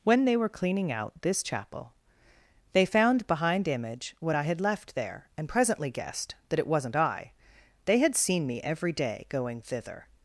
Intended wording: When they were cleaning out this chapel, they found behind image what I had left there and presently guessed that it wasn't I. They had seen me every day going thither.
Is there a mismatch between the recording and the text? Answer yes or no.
no